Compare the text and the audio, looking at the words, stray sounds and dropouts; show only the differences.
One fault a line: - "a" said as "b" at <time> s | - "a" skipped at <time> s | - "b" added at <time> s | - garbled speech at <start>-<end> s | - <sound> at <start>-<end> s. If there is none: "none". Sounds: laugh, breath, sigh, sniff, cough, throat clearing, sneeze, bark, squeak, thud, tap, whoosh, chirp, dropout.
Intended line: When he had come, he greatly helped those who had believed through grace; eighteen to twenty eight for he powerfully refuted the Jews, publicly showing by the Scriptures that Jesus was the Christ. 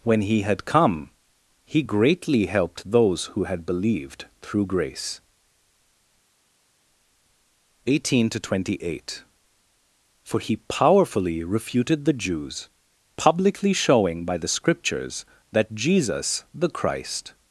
- "was" skipped at 16.4 s